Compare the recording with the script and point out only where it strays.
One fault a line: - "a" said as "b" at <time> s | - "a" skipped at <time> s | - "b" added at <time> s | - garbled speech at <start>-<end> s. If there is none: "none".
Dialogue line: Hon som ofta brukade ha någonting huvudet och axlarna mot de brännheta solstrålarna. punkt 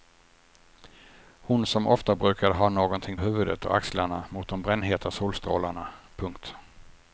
none